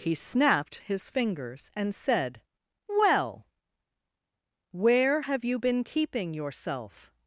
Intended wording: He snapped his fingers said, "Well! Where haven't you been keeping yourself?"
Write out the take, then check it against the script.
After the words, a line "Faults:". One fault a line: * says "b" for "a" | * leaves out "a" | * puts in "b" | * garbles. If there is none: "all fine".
He snapped his fingers and said, "Well! Where have you been keeping yourself?"
Faults:
* puts in "and"
* says "have" for "haven't"